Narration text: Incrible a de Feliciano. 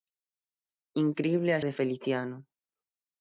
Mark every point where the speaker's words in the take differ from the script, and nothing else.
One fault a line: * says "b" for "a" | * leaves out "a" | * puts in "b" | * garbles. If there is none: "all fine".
all fine